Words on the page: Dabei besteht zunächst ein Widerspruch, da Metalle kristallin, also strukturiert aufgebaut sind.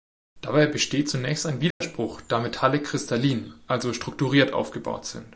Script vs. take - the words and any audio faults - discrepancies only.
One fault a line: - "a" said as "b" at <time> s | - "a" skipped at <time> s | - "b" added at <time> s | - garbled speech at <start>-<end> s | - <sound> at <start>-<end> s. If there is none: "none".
- dropout at 1.7-1.8 s